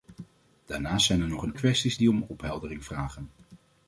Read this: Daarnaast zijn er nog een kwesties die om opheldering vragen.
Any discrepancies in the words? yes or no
no